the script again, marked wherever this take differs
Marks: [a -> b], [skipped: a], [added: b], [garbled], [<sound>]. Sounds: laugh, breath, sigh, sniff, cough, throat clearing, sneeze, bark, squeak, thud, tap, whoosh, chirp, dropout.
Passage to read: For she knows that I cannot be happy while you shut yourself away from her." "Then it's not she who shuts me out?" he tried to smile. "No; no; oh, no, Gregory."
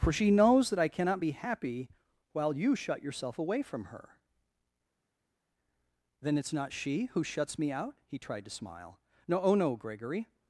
For she knows that I cannot be happy while you shut yourself away from her." "Then it's not she who shuts me out?" he tried to smile. "No; [skipped: no;] oh, no, Gregory."